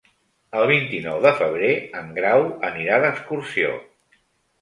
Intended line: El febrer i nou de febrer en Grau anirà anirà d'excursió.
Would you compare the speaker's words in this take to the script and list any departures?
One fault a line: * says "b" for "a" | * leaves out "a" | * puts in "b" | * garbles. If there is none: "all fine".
* says "vint" for "febrer"
* leaves out "anirà"